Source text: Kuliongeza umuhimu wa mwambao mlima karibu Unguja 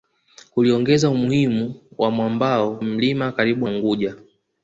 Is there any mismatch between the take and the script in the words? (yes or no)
no